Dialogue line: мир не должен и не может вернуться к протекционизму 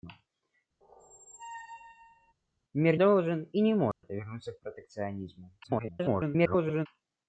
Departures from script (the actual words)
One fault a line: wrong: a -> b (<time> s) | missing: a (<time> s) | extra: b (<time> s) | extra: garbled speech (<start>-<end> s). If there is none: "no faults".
missing: не (3.0 s)
extra: garbled speech (5.6-6.9 s)